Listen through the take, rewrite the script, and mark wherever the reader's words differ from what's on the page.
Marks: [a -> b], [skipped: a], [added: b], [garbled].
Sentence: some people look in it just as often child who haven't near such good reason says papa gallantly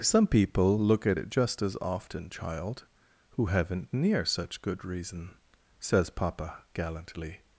some people look [in -> at] it just as often child who haven't near such good reason says papa gallantly